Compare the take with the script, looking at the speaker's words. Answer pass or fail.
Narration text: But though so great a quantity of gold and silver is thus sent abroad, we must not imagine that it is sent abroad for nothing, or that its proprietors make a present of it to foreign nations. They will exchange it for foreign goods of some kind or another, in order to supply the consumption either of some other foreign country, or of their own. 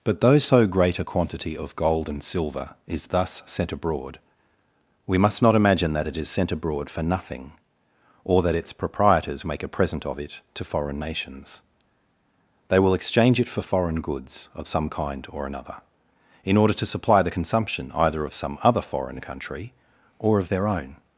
pass